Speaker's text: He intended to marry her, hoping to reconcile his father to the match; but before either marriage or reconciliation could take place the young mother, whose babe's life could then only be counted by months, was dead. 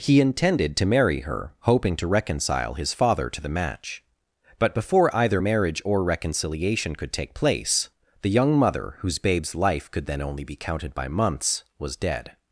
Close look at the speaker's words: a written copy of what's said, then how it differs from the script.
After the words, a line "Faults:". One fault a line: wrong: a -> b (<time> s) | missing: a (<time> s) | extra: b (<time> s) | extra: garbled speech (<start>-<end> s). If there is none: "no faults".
He intended to marry her, hoping to reconcile his father to the match; but before either marriage or reconciliation could take place the young mother, whose babe's life could then only be counted by months, was dead.
Faults:
no faults